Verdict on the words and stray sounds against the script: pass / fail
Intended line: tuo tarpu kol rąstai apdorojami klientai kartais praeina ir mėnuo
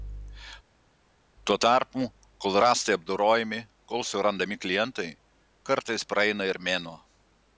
fail